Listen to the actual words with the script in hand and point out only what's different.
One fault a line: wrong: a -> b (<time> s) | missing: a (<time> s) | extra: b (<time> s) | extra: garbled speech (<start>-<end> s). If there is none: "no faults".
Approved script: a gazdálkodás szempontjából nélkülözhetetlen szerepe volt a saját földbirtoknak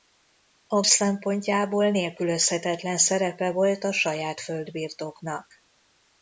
missing: gazdálkodás (0.8 s)